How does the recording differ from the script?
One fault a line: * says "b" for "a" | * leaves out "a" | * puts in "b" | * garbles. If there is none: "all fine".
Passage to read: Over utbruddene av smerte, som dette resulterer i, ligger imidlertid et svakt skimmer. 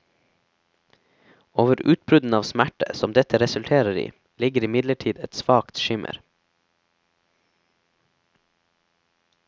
all fine